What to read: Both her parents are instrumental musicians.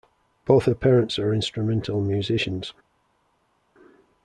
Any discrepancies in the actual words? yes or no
no